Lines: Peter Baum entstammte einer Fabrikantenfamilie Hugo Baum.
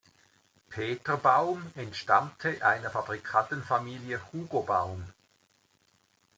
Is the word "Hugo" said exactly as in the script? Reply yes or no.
yes